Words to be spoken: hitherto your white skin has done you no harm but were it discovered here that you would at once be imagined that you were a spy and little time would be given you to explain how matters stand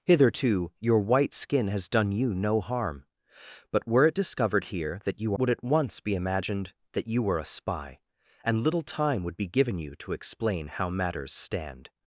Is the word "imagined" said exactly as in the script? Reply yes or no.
yes